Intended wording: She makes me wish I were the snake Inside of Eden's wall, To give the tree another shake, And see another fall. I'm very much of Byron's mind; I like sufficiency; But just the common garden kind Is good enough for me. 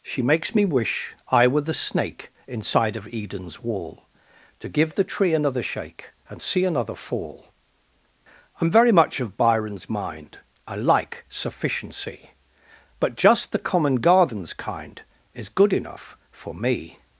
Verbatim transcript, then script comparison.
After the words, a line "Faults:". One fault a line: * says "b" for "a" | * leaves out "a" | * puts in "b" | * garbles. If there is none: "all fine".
She makes me wish I were the snake Inside of Eden's wall, To give the tree another shake, And see another fall. I'm very much of Byron's mind; I like sufficiency; But just the common gardens kind Is good enough for me.
Faults:
* says "gardens" for "garden"